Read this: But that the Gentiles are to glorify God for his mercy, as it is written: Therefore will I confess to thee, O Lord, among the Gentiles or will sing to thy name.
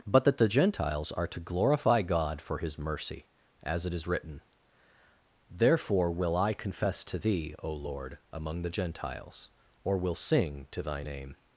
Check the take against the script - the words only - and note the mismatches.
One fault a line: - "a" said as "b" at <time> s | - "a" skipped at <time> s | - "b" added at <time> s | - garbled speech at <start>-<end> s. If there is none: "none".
none